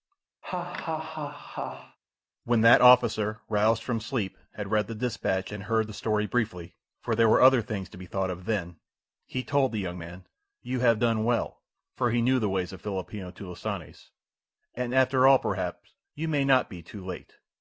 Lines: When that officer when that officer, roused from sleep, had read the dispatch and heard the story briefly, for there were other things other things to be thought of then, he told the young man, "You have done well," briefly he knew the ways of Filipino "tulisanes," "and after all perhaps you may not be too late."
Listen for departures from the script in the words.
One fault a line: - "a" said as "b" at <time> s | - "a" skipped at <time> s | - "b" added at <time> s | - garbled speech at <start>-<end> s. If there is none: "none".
- "when that officer" skipped at 3.4 s
- "other things" skipped at 7.9 s
- "briefly" said as "for" at 12.0 s